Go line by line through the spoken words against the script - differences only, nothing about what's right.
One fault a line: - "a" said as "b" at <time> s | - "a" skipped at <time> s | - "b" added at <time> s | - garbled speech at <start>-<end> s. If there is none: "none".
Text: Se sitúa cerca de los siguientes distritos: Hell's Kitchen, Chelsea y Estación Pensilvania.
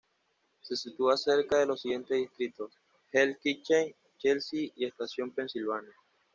none